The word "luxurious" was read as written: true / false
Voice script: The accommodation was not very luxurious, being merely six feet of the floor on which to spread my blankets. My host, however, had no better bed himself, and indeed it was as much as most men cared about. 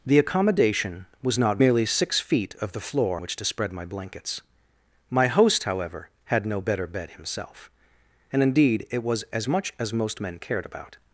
false